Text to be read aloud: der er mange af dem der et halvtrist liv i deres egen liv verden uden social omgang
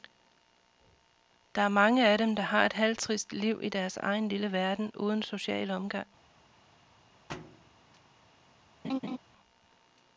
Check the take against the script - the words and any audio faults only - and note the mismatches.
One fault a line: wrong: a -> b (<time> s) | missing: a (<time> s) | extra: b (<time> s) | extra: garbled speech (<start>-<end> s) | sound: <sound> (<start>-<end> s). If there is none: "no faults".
extra: har (2.4 s)
wrong: liv -> lille (4.3 s)
sound: thud (7.3-8.0 s)
sound: laugh (8.8-9.2 s)